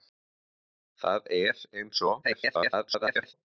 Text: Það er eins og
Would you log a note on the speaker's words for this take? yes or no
yes